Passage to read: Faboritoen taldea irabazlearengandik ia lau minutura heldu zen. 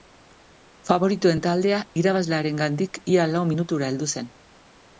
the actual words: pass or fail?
pass